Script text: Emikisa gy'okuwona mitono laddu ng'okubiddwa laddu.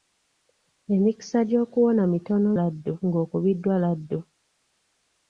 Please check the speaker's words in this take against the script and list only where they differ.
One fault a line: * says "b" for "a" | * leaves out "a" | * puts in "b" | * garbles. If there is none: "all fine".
all fine